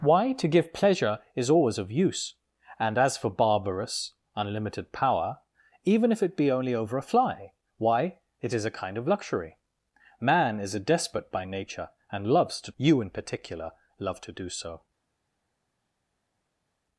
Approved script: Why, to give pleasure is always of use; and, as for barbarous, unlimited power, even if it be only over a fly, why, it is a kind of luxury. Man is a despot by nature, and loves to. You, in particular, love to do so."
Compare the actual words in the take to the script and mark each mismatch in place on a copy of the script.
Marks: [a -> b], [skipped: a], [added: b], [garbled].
Why, to give pleasure is always of use; and, as for barbarous, unlimited power, even if it be only over a fly, why, it is a kind of luxury. Man is a despot by nature, and loves to. You, in particular, love to do so."